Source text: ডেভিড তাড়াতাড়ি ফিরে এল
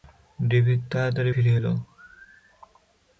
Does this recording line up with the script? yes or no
yes